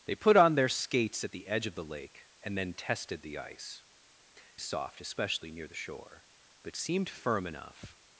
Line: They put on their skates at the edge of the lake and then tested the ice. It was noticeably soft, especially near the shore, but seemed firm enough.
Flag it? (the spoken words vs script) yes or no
yes